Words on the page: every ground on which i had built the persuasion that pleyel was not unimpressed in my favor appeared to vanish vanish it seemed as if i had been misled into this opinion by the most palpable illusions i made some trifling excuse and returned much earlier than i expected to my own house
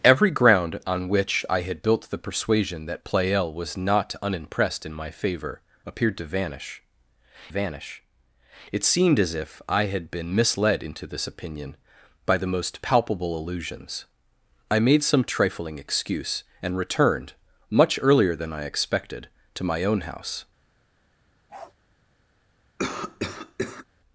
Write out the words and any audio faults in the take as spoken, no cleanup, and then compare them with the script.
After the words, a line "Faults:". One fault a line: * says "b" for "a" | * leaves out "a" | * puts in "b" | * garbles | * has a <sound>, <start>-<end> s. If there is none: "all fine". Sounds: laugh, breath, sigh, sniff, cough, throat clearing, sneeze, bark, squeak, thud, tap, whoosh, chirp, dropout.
every ground on which i had built the persuasion that pleyel was not unimpressed in my favor appeared to vanish vanish it seemed as if i had been misled into this opinion by the most palpable illusions i made some trifling excuse and returned much earlier than i expected to my own house
Faults:
* has a bark, 21.5-21.7 s
* has a cough, 22.8-23.8 s